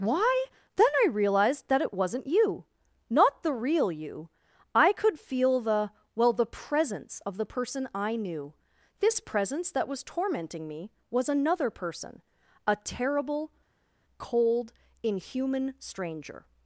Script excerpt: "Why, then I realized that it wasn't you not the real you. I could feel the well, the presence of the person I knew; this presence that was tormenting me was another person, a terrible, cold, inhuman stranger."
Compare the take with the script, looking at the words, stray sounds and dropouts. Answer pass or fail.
pass